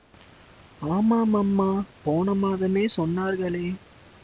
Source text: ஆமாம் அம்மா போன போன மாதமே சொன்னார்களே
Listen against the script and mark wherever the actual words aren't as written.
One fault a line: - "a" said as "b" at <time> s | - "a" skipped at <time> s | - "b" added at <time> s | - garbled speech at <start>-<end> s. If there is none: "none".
- "போன" skipped at 2.4 s